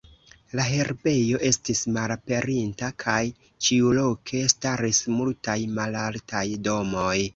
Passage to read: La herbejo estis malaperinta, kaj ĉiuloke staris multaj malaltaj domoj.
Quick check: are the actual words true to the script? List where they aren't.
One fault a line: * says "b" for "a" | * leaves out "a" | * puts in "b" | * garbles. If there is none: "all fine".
all fine